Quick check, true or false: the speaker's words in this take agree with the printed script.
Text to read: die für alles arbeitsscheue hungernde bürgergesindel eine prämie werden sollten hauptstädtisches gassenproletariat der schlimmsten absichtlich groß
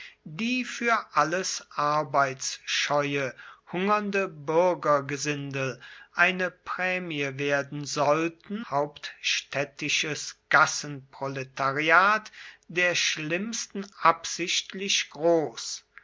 true